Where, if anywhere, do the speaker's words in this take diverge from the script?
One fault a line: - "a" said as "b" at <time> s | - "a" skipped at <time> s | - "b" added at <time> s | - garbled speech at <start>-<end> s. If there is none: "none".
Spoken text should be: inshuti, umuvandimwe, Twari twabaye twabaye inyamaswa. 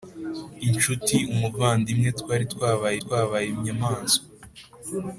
none